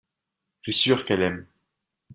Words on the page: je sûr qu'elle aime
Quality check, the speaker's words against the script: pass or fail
pass